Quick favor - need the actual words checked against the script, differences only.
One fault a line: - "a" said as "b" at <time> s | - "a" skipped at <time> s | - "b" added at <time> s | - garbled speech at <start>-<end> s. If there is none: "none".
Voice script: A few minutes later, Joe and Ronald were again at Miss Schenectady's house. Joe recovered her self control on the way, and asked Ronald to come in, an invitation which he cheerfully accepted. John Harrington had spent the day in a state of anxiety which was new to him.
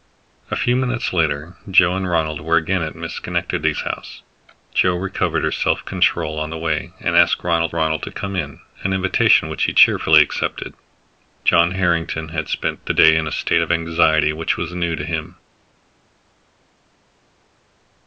- "Ronald" added at 7.7 s